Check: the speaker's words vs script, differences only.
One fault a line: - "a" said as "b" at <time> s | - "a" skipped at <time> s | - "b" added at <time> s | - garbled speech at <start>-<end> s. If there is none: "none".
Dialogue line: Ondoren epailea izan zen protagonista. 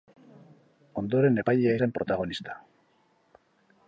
- "izan" skipped at 1.7 s